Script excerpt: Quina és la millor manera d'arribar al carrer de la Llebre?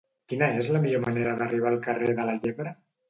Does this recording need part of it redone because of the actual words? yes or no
no